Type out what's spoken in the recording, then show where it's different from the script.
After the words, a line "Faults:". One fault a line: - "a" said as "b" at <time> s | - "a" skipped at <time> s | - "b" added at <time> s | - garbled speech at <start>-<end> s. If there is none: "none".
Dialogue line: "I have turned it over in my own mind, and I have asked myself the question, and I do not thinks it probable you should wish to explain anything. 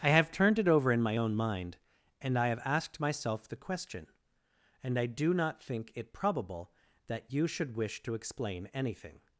"I have turned it over in my own mind, and I have asked myself the question, and I do not think it probable that you should wish to explain anything.
Faults:
- "thinks" said as "think" at 5.6 s
- "that" added at 7.1 s